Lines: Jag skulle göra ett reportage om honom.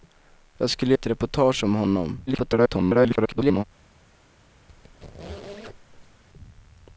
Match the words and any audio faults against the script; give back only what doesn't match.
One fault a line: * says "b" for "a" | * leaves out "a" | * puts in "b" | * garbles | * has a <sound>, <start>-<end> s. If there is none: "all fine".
* leaves out "göra"
* garbles
* has a squeak, 4.7-6.2 s